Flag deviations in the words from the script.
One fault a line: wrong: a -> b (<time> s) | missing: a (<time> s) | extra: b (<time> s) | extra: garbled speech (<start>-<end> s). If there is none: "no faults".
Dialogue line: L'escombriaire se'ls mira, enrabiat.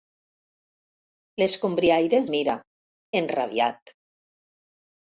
missing: se'ls (2.2 s)